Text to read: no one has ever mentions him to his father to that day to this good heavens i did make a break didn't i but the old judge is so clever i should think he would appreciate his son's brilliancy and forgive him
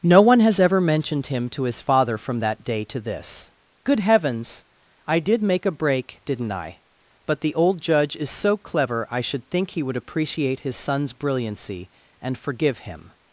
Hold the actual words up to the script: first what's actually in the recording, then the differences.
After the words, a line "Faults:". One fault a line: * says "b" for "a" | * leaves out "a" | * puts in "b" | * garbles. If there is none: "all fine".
no one has ever mentioned him to his father from that day to this good heavens i did make a break didn't i but the old judge is so clever i should think he would appreciate his son's brilliancy and forgive him
Faults:
* says "mentioned" for "mentions"
* says "from" for "to"